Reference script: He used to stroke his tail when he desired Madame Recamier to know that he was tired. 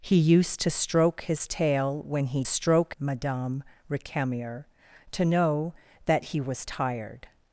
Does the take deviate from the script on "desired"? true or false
true